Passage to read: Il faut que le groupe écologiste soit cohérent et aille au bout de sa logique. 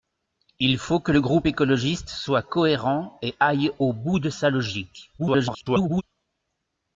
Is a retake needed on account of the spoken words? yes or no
yes